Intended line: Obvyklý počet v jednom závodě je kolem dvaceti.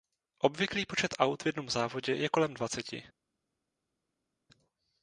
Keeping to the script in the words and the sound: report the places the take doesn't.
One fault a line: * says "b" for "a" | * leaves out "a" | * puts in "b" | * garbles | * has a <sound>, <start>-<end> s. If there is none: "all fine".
* puts in "aut"